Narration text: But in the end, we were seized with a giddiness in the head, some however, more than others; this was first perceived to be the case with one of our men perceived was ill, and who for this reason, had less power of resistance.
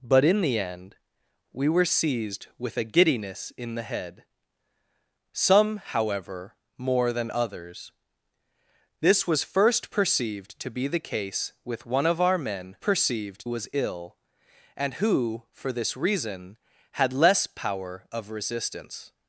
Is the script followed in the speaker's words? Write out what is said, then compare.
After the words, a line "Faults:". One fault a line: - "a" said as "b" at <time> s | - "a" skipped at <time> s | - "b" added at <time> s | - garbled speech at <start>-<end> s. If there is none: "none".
But in the end, we were seized with a giddiness in the head, some however, more than others; this was first perceived to be the case with one of our men perceived was ill, and who for this reason, had less power of resistance.
Faults:
none